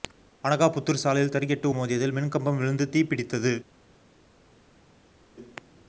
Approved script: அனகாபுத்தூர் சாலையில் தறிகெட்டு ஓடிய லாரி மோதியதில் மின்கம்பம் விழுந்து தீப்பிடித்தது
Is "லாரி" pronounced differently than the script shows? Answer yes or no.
yes